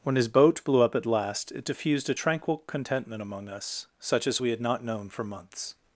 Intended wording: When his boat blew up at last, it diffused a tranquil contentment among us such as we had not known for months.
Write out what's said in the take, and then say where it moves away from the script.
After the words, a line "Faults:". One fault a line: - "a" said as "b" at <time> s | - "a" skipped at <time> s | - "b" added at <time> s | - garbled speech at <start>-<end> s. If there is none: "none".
When his boat blew up at last, it diffused a tranquil contentment among us such as we had not known for months.
Faults:
none